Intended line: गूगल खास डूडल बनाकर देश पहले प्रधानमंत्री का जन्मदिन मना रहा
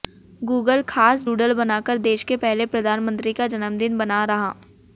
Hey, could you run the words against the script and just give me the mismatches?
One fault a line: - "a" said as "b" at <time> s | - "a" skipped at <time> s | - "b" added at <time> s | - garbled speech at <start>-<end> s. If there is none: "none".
- "के" added at 2.2 s